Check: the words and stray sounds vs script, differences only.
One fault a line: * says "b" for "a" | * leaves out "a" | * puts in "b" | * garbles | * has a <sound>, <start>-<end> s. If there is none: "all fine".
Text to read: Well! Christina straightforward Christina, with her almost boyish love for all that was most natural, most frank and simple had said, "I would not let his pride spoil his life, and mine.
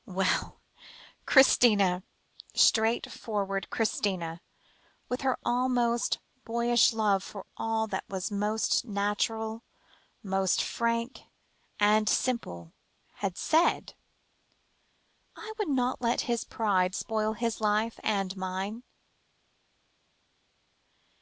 all fine